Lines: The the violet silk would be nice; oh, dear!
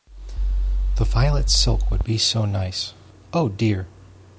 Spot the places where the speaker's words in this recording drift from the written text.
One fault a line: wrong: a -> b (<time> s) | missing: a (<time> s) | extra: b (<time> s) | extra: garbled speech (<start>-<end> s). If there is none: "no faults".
missing: the (1.1 s)
extra: so (2.2 s)